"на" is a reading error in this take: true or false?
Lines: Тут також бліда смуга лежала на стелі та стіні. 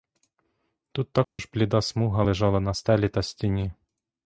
false